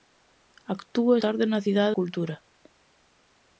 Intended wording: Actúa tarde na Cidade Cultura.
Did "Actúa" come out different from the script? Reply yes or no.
no